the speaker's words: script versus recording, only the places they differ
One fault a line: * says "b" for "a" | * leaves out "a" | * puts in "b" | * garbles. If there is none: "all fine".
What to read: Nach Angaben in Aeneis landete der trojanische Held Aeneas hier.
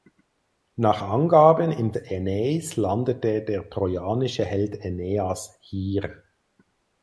all fine